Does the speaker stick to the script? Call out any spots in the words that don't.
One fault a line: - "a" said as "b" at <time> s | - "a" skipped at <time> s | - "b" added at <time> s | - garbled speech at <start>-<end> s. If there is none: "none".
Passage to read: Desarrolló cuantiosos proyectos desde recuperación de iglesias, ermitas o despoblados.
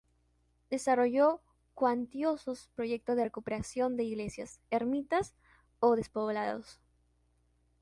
- "desde" said as "de" at 3.1 s